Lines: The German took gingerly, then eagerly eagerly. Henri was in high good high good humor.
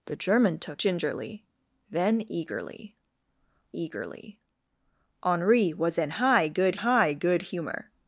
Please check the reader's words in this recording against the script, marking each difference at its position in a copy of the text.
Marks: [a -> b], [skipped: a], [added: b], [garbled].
The German took gingerly, then eagerly eagerly. Henri was in high good high good humor.